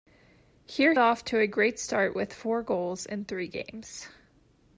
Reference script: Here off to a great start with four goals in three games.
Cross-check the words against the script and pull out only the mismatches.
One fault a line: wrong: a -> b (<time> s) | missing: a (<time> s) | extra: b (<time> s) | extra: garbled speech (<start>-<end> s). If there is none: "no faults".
no faults